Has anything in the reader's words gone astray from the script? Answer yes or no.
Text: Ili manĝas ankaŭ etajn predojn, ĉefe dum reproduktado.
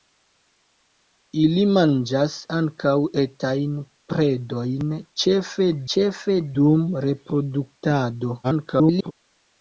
yes